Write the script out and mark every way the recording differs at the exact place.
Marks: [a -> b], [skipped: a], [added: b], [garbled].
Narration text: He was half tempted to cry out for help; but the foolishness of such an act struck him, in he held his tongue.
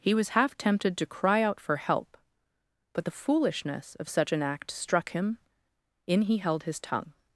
He was half tempted to cry out for help; but the foolishness of such an act struck him, in he held his tongue.